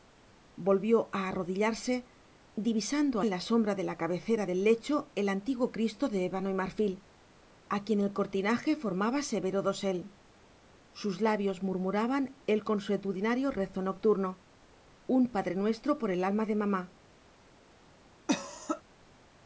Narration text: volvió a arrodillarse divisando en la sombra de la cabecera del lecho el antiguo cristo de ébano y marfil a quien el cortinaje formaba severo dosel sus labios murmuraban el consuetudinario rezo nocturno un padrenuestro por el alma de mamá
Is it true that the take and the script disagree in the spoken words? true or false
false